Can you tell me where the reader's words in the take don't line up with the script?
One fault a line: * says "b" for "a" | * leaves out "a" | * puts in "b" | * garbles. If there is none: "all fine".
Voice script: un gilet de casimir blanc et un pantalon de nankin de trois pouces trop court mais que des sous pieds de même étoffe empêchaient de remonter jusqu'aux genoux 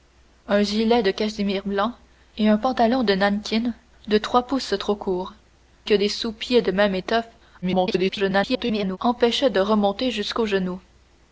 * leaves out "mais"
* garbles